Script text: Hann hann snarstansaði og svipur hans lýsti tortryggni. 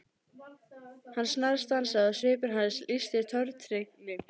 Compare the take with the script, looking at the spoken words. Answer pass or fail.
fail